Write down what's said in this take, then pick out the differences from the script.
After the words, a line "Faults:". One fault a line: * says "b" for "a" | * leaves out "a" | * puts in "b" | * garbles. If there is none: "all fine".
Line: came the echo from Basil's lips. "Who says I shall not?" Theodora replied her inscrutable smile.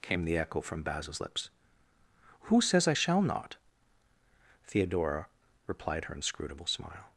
came the echo from Basil's lips. "Who says I shall not?" Theodora replied her inscrutable smile.
Faults:
all fine